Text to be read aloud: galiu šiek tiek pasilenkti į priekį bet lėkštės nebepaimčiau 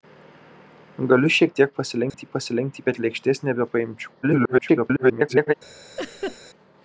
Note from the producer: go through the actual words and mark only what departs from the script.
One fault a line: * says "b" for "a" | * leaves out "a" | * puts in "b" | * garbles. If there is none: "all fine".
* says "pasilenkti" for "priekį"
* garbles